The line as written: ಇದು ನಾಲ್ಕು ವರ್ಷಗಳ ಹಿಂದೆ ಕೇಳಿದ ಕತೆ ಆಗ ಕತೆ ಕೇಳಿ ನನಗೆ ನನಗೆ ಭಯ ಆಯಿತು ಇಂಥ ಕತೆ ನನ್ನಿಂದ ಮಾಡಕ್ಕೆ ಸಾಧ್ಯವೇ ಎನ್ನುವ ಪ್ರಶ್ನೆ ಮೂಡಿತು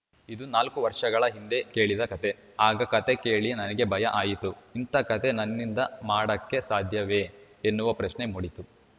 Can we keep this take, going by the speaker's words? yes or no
no